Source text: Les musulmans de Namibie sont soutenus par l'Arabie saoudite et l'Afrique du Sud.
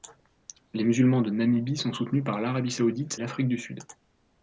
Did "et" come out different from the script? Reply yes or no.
yes